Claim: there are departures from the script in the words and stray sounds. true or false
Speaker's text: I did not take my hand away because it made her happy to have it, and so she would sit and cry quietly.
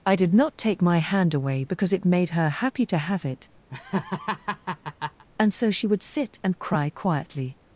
true